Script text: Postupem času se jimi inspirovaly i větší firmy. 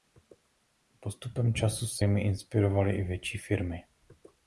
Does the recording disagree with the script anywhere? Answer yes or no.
no